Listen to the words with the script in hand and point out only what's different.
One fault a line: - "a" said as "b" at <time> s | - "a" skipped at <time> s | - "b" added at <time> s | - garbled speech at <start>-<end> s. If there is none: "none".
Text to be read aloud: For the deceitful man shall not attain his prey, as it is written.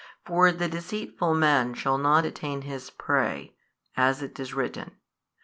none